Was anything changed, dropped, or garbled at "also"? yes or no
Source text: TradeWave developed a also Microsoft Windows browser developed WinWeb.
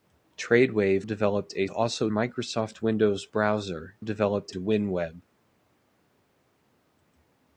no